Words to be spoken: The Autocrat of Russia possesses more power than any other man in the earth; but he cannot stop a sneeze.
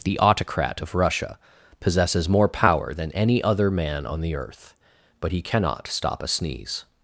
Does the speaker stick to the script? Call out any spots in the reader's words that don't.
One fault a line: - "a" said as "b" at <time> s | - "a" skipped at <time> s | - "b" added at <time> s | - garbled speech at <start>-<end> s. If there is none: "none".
- "in" said as "on" at 4.1 s